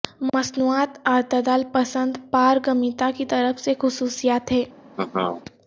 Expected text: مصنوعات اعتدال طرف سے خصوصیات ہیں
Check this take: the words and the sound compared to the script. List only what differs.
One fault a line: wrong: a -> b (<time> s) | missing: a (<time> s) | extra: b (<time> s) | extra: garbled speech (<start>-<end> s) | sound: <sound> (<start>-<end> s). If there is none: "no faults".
extra: پسند پارگمیتا کی (1.7 s)
sound: laugh (4.9-5.4 s)